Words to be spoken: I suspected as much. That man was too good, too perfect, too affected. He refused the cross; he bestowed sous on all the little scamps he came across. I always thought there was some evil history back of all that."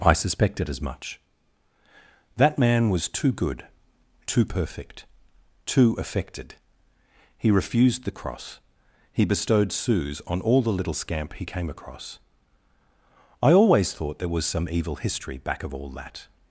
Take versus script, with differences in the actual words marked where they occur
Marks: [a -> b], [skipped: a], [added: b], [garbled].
I suspected as much. That man was too good, too perfect, too affected. He refused the cross; he bestowed sous on all the little [scamps -> scamp] he came across. I always thought there was some evil history back of all that."